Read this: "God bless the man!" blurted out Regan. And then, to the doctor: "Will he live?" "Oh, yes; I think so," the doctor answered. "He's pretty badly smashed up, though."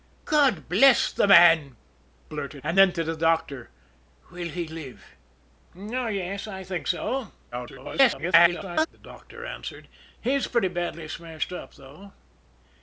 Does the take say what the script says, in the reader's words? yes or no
no